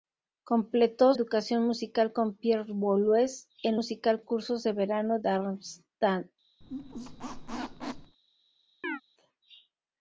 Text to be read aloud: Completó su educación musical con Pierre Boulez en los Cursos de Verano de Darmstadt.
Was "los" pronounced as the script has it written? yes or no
no